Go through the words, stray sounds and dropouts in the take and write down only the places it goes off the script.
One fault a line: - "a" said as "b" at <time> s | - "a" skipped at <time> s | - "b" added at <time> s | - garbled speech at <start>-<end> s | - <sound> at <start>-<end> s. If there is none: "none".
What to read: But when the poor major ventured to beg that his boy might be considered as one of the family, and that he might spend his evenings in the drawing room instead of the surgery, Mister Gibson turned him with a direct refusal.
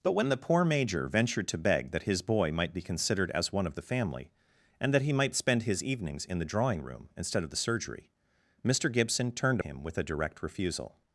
none